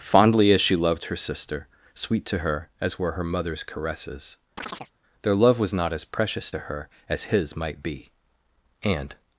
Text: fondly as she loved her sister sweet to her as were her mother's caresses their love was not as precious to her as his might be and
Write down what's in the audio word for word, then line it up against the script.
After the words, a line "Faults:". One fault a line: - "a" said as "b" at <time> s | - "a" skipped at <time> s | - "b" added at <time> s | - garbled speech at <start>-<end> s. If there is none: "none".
fondly as she loved her sister sweet to her as were her mother's caresses their love was not as precious to her as his might be and
Faults:
none